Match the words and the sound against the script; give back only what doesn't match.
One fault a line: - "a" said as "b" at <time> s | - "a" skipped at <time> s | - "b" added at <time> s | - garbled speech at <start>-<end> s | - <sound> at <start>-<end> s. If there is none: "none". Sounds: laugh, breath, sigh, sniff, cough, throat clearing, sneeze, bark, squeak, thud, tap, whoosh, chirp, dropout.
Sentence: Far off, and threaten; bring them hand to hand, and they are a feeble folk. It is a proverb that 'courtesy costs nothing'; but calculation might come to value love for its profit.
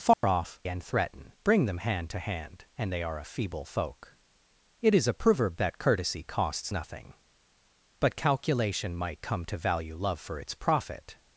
- dropout at 0.1-0.2 s